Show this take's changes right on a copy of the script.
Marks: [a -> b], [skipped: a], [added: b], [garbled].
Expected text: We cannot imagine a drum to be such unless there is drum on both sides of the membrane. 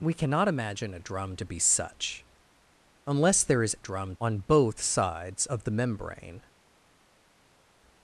We cannot imagine a drum to be such unless there is drum on both sides of the membrane.